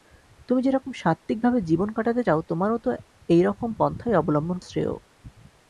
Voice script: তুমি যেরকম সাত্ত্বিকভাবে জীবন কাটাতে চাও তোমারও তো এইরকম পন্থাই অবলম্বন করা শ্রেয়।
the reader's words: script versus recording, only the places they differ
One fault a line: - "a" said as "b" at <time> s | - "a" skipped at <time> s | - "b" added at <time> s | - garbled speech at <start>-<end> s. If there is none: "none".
- "করা" skipped at 4.6 s